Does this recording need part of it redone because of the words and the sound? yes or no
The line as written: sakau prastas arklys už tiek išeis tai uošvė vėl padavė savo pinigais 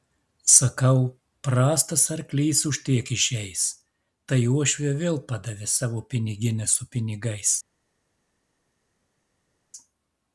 yes